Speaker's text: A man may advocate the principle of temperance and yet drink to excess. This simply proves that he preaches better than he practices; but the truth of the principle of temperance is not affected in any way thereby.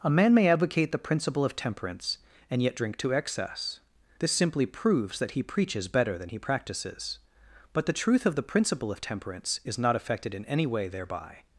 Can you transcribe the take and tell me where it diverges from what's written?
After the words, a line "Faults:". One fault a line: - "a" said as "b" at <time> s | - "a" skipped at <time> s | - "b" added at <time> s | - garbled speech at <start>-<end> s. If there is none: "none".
A man may advocate the principle of temperance and yet drink to excess. This simply proves that he preaches better than he practices; but the truth of the principle of temperance is not affected in any way thereby.
Faults:
none